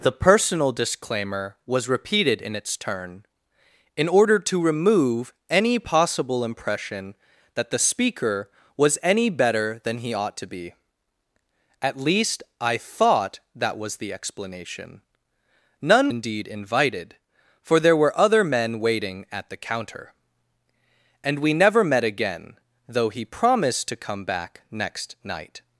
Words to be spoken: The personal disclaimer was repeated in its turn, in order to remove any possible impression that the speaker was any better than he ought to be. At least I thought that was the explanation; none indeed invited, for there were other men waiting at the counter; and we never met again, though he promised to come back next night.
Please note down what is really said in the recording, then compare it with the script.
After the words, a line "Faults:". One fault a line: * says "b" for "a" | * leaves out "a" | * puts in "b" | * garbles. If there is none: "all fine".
The personal disclaimer was repeated in its turn, in order to remove any possible impression that the speaker was any better than he ought to be. At least I thought that was the explanation; none indeed invited, for there were other men waiting at the counter; and we never met again, though he promised to come back next night.
Faults:
all fine